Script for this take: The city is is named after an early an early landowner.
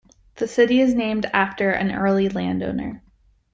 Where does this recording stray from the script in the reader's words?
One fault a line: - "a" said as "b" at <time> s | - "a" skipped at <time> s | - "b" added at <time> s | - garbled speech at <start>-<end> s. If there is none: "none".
- "is" skipped at 0.9 s
- "an early" skipped at 2.3 s